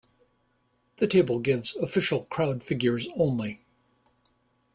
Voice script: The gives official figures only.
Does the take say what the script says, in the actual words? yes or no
no